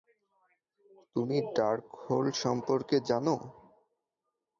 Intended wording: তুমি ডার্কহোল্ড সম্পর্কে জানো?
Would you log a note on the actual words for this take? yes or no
no